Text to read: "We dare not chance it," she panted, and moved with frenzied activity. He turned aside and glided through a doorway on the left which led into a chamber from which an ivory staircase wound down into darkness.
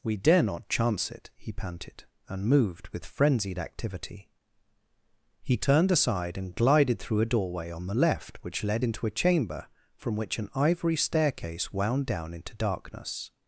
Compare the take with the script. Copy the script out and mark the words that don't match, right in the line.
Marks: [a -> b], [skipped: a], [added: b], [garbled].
"We dare not chance it," [she -> he] panted, and moved with frenzied activity. He turned aside and glided through a doorway on the left which led into a chamber from which an ivory staircase wound down into darkness.